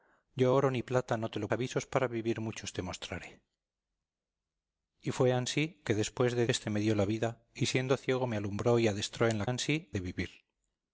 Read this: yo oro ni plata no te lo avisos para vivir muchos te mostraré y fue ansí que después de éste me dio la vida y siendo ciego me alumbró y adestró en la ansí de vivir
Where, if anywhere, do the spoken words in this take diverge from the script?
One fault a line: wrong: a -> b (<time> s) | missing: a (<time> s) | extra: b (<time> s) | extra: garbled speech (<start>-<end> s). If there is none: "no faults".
no faults